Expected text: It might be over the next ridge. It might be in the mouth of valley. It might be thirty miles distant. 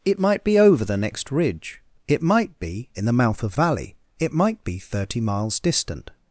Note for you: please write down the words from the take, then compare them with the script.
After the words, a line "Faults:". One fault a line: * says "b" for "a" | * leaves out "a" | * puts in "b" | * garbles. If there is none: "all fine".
It might be over the next ridge. It might be in the mouth of valley. It might be thirty miles distant.
Faults:
all fine